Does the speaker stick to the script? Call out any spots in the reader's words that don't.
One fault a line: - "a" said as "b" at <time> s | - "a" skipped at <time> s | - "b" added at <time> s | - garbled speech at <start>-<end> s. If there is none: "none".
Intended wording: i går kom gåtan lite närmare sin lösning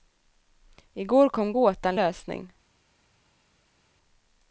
- "lite närmare sin" skipped at 2.0 s